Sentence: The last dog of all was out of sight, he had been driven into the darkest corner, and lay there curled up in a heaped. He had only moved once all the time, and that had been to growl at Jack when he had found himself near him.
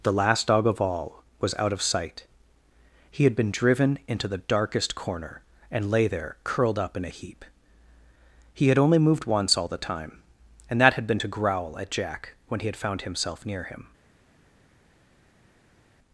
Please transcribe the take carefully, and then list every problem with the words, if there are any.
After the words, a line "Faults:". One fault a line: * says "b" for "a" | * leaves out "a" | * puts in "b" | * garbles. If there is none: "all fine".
The last dog of all was out of sight, he had been driven into the darkest corner, and lay there curled up in a heap. He had only moved once all the time, and that had been to growl at Jack when he had found himself near him.
Faults:
* says "heap" for "heaped"